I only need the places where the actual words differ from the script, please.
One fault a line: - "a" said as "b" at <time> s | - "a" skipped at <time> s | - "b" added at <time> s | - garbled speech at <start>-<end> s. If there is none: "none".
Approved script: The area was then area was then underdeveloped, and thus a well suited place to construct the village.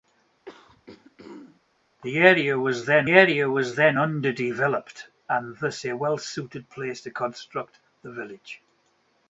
none